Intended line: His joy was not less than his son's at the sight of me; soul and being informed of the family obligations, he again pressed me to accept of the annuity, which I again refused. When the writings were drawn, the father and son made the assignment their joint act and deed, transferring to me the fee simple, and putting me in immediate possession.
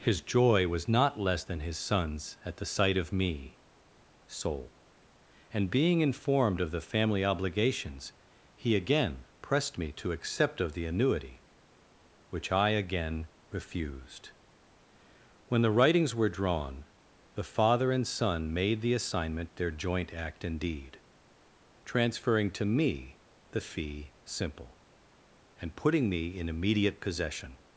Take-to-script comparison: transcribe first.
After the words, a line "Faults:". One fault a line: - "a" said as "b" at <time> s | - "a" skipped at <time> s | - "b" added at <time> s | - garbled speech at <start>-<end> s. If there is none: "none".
His joy was not less than his son's at the sight of me; soul and being informed of the family obligations, he again pressed me to accept of the annuity, which I again refused. When the writings were drawn, the father and son made the assignment their joint act and deed, transferring to me the fee simple, and putting me in immediate possession.
Faults:
none